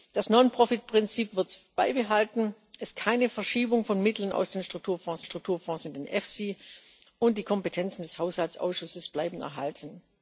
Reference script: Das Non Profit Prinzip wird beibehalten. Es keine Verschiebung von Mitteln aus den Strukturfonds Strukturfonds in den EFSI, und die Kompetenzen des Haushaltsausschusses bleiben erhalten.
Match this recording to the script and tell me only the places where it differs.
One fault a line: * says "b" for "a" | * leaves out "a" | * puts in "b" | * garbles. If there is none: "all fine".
all fine